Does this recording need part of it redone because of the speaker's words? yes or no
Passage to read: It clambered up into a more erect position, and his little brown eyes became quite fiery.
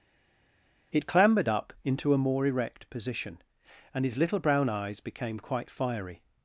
no